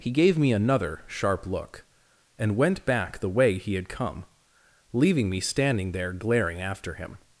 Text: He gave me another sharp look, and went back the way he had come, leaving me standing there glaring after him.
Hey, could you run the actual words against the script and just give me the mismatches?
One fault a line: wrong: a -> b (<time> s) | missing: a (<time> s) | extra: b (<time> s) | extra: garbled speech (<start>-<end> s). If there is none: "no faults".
no faults